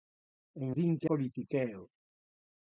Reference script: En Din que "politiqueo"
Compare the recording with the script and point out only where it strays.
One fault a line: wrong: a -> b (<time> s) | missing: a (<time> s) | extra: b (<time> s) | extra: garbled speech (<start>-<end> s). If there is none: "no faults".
no faults